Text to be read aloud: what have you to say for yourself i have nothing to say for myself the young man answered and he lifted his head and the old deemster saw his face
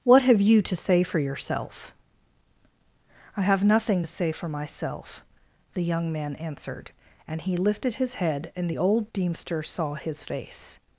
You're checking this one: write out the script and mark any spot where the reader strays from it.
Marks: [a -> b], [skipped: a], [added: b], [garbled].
what have you to say for yourself i have nothing to say for myself the young man answered and he lifted his head and the old deemster saw his face